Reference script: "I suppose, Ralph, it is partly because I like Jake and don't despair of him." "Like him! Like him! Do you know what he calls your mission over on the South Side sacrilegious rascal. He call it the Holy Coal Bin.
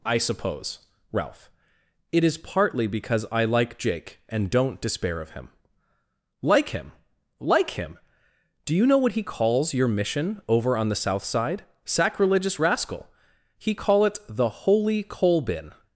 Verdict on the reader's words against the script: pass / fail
pass